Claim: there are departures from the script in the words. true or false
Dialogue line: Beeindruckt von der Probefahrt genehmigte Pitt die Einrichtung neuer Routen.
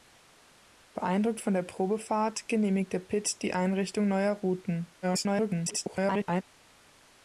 true